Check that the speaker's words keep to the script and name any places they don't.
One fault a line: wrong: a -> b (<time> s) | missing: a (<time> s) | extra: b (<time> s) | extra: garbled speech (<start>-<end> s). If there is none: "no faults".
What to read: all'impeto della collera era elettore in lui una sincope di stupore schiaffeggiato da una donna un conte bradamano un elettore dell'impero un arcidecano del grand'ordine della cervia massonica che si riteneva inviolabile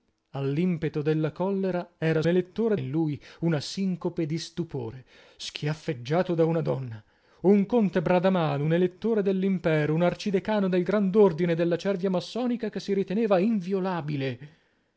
no faults